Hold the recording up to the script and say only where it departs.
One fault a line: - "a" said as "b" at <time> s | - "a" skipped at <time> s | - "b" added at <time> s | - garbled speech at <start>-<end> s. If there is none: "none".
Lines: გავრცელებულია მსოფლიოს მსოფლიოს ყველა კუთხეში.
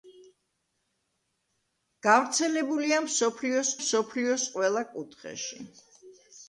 none